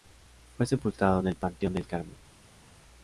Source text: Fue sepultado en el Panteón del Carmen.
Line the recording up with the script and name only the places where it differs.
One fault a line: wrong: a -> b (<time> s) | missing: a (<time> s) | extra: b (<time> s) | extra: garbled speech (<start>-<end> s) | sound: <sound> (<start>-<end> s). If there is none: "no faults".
no faults